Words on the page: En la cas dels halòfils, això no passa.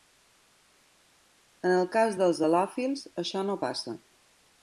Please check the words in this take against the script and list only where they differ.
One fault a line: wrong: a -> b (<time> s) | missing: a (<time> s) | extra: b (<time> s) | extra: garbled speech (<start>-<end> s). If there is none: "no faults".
wrong: la -> el (1.8 s)